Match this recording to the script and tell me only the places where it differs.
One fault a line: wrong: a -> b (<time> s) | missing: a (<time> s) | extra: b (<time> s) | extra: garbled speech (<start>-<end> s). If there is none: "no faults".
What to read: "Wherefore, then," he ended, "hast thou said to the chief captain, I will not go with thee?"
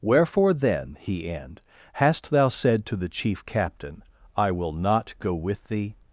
wrong: ended -> end (1.3 s)